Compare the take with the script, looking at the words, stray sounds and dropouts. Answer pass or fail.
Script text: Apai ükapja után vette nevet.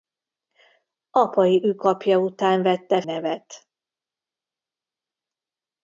pass